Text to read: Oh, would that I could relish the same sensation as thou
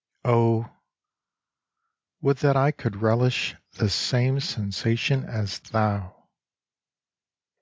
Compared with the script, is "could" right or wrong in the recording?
right